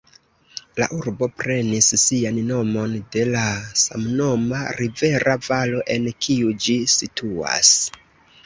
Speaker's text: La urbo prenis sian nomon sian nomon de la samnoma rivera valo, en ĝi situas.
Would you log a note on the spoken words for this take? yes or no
yes